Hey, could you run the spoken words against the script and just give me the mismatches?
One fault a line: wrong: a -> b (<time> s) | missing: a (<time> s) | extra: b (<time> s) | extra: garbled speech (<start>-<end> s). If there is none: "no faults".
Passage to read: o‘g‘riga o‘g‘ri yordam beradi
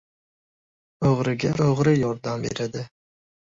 no faults